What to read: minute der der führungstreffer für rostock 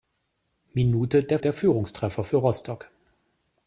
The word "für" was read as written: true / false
true